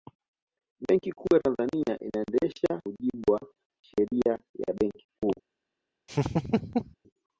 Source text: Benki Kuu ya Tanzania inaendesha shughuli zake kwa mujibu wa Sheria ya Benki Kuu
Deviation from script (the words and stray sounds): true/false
true